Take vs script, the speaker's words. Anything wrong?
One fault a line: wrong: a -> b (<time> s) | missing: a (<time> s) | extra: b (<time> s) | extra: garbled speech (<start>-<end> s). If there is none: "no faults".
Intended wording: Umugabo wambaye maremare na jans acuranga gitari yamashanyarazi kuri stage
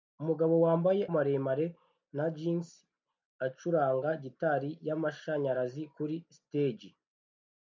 no faults